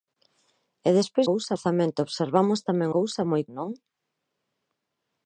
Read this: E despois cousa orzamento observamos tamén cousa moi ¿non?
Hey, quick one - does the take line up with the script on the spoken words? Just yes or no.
yes